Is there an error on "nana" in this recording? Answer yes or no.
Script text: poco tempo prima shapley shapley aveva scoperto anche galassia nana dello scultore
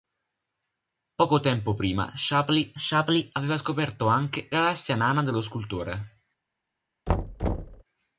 no